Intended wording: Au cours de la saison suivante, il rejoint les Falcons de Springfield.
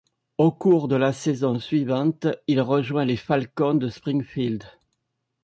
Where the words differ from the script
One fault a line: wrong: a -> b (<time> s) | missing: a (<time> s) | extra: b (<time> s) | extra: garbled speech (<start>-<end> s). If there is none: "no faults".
no faults